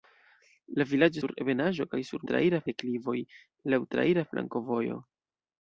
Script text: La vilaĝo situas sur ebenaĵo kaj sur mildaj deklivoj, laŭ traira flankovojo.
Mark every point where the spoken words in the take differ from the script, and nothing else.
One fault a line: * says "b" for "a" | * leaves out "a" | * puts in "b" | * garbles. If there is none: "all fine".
* leaves out "situas"
* says "traira" for "mildaj"